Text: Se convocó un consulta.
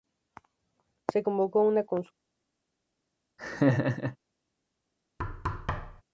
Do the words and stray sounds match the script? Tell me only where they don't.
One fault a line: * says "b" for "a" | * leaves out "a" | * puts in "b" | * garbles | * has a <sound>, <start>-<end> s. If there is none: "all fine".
* says "una" for "un"
* has a laugh, 3.4-4.2 s
* has a thud, 5.2-6.0 s